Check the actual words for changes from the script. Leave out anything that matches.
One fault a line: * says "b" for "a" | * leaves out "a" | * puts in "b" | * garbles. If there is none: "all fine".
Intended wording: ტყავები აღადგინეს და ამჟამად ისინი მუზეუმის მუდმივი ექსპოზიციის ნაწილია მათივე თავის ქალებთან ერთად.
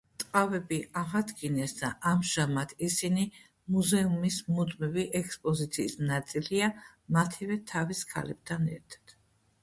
all fine